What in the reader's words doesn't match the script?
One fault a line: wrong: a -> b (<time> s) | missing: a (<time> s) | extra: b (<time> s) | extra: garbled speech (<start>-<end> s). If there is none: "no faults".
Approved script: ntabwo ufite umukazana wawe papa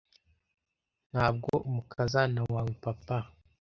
missing: ufite (1.5 s)